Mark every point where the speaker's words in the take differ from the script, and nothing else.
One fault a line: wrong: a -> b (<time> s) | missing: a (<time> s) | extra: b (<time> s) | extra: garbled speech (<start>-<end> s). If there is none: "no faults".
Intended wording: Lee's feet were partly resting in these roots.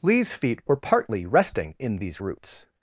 no faults